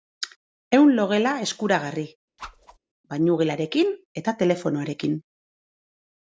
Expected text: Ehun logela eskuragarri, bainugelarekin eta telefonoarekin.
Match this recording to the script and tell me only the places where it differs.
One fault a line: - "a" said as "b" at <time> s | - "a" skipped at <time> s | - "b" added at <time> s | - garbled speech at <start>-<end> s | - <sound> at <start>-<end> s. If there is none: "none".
- whoosh at 2.4-2.8 s